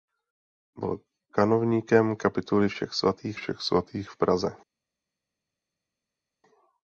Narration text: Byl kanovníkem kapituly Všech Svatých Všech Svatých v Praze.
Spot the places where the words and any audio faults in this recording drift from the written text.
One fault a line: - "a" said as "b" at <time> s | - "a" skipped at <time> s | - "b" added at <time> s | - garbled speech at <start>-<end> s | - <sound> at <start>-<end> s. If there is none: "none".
none